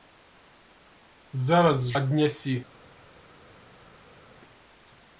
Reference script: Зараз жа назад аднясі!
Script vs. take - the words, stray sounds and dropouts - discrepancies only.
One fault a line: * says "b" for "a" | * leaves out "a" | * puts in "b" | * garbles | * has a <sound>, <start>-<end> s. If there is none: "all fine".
* leaves out "жа назад"